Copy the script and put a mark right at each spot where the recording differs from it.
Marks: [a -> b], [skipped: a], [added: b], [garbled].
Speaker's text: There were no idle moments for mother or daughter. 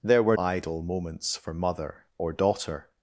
There were [skipped: no] idle moments for mother or daughter.